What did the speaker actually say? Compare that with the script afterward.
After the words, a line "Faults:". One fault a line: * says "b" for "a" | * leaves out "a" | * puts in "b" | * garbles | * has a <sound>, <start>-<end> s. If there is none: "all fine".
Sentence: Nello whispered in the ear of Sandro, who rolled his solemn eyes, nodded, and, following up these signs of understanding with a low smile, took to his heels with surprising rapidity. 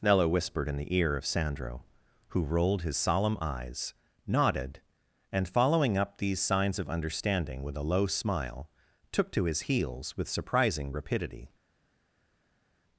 Nello whispered in the ear of Sandro, who rolled his solemn eyes, nodded, and, following up these signs of understanding with a low smile, took to his heels with surprising rapidity.
Faults:
all fine